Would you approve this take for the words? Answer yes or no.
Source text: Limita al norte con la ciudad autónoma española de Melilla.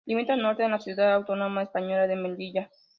yes